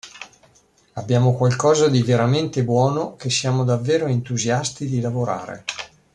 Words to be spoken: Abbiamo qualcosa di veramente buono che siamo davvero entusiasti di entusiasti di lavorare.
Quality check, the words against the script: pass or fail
fail